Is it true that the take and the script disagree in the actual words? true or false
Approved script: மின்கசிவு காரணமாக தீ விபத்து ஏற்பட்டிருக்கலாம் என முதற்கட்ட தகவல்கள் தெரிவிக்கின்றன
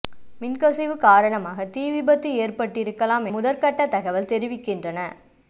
true